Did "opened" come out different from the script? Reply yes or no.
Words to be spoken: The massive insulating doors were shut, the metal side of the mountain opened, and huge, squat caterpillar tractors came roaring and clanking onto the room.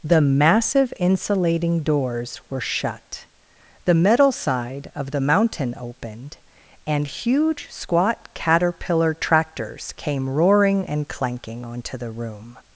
no